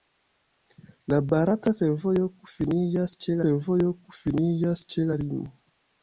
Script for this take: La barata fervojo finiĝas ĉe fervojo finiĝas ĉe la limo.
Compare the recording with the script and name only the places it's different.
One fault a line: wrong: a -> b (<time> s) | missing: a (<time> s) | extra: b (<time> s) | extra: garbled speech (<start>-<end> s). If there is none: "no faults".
no faults